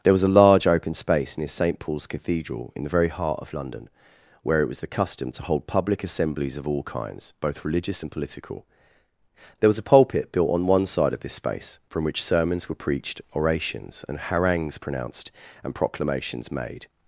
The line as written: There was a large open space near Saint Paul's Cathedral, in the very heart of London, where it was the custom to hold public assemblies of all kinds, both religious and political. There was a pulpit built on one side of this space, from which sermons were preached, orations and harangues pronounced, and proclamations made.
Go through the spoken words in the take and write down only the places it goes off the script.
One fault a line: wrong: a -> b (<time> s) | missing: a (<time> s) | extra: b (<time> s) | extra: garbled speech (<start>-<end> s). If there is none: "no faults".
no faults